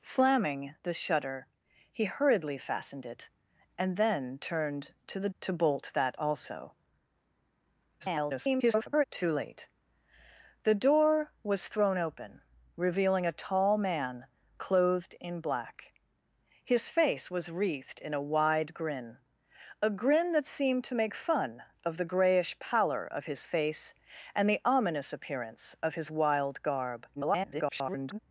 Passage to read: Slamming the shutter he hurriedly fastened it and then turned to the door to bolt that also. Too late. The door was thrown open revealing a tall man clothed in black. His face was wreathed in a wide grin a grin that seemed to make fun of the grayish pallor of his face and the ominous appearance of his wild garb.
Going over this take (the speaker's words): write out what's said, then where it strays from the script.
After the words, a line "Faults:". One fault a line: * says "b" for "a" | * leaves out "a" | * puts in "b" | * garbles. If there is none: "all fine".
Slamming the shutter he hurriedly fastened it and then turned to the to bolt that also. [garbled] Too late. The door was thrown open revealing a tall man clothed in black. His face was wreathed in a wide grin a grin that seemed to make fun of the grayish pallor of his face and the ominous appearance of his wild garb. [garbled]
Faults:
* leaves out "door"
* garbles
* garbles